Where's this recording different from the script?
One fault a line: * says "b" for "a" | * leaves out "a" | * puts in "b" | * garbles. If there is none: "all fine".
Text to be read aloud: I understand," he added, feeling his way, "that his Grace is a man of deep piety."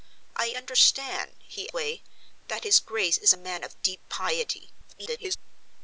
* leaves out "added feeling his"
* garbles